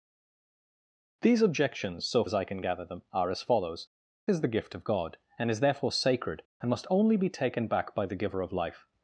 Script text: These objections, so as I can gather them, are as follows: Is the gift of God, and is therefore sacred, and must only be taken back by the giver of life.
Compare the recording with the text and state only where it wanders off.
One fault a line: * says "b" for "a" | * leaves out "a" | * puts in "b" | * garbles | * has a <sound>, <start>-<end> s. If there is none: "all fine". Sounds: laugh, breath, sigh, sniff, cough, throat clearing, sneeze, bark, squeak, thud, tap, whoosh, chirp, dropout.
all fine